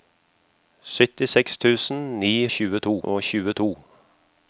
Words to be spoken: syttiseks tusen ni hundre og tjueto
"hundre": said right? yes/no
no